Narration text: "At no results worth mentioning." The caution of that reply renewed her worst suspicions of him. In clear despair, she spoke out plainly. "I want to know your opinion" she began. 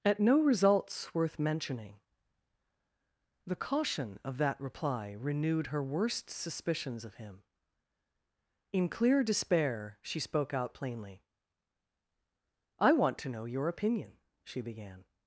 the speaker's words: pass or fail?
pass